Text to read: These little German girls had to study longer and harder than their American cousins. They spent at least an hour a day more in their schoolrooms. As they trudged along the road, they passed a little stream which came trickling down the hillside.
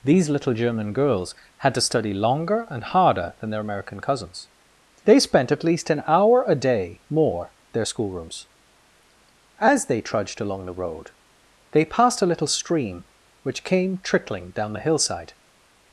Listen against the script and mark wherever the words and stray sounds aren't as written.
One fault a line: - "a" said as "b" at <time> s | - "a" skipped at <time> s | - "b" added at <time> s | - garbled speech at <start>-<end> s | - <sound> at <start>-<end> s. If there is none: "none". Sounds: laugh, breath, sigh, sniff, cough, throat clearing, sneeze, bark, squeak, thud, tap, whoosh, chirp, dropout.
- "in" skipped at 7.5 s